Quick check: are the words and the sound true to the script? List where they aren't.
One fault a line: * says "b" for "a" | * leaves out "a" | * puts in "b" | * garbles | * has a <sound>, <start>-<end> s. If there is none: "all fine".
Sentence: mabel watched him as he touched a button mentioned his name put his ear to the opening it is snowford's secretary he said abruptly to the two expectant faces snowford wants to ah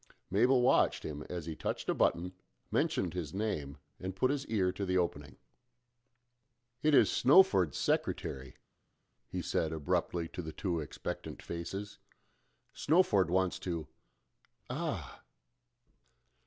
* puts in "and"